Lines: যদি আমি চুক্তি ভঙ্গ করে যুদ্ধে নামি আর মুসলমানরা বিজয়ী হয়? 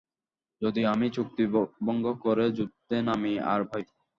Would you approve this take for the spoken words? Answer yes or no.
no